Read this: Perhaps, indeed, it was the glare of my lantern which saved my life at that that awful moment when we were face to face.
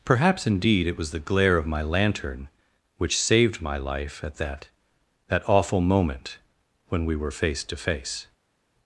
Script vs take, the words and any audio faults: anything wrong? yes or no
no